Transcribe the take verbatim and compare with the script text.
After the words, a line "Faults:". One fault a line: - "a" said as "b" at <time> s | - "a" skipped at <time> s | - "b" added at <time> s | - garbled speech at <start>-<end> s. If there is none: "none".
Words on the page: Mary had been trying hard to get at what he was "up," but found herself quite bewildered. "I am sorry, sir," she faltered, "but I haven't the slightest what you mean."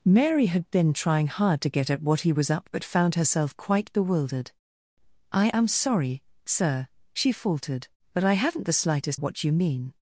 Mary had been trying hard to get at what he was "up," but found herself quite bewildered. "I am sorry, sir," she faltered, "but I haven't the slightest what you mean."
Faults:
none